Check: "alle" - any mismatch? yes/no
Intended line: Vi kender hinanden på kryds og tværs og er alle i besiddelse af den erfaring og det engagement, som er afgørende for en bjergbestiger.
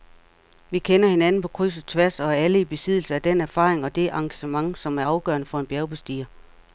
no